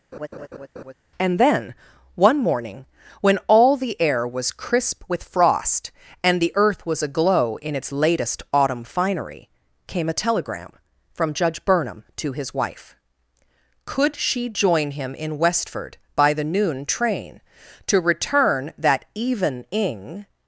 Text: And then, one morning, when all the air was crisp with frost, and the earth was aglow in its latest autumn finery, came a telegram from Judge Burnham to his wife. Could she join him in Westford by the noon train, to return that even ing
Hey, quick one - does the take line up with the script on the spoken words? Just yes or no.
yes